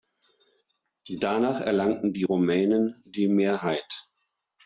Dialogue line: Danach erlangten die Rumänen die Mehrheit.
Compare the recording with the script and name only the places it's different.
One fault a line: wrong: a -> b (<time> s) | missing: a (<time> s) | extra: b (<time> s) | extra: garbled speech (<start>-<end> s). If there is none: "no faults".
no faults